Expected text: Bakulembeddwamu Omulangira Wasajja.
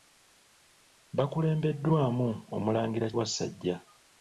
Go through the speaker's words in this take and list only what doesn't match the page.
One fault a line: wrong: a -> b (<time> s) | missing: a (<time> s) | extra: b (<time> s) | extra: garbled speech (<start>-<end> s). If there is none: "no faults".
no faults